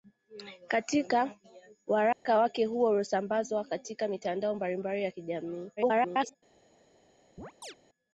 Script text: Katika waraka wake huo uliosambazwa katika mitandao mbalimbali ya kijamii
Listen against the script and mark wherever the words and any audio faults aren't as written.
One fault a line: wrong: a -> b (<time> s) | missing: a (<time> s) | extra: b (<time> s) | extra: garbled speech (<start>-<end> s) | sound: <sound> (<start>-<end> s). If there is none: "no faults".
sound: dropout (2.1-2.3 s)
extra: garbled speech (5.8-6.4 s)
sound: chirp (7.4-7.8 s)